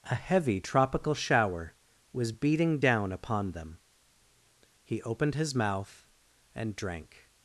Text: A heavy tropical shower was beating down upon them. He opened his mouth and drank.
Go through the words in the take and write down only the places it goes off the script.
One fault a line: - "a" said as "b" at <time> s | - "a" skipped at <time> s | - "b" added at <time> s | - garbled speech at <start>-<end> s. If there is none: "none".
none